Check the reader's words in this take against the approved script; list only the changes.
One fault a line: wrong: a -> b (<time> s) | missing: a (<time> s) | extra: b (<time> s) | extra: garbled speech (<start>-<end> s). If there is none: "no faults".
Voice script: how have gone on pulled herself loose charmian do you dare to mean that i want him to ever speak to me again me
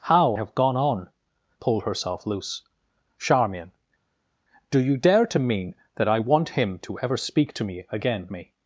no faults